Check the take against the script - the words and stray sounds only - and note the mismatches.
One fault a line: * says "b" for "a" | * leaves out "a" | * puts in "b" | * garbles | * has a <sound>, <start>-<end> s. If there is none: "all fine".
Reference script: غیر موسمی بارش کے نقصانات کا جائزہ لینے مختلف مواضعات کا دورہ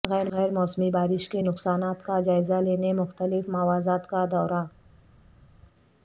all fine